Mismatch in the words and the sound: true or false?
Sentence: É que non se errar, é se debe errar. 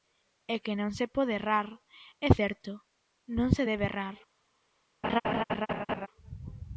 true